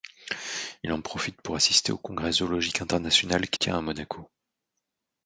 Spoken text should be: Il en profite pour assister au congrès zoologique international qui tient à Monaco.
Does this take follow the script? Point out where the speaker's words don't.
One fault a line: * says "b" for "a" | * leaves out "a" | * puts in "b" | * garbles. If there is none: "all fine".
all fine